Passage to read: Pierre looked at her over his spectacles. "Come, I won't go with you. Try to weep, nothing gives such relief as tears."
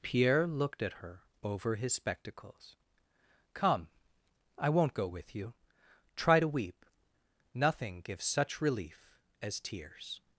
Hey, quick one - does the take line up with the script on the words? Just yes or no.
yes